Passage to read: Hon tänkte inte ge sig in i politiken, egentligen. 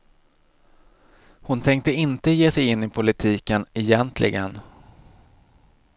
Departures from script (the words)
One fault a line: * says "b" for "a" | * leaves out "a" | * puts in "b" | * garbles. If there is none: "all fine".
all fine